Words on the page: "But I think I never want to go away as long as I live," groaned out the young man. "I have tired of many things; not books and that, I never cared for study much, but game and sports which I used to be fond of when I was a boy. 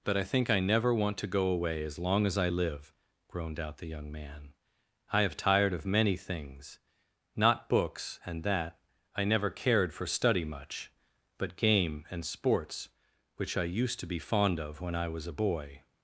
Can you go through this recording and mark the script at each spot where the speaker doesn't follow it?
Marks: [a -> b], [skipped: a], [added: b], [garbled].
"But I think I never want to go away as long as I live," groaned out the young man. "I have tired of many things; not books and that, I never cared for study much, but game and sports which I used to be fond of when I was a boy.